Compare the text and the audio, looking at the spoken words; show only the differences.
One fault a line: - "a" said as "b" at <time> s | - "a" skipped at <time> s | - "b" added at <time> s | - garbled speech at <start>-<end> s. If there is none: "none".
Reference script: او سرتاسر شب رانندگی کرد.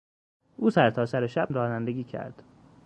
none